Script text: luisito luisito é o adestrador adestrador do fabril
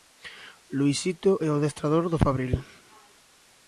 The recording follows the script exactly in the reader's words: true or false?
false